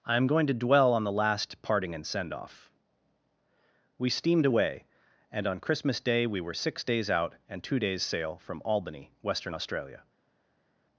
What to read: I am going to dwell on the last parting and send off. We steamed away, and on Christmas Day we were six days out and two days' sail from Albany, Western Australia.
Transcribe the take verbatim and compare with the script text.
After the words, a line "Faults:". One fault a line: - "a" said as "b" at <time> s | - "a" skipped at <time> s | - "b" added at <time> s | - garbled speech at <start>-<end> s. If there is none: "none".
I am going to dwell on the last parting and send off. We steamed away, and on Christmas Day we were six days out and two days' sail from Albany, Western Australia.
Faults:
none